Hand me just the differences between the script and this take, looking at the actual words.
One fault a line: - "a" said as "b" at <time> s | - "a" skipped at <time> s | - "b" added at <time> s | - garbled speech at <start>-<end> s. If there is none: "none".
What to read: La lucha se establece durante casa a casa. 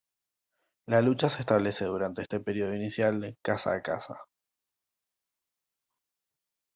- "este periodo inicial" added at 2.2 s